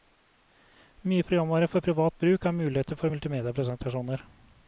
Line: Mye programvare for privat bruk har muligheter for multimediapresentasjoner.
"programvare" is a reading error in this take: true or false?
false